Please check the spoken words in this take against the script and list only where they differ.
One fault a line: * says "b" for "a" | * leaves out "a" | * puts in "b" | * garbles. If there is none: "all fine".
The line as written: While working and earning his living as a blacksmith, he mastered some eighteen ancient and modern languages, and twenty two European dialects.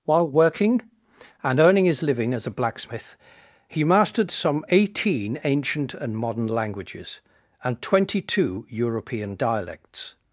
all fine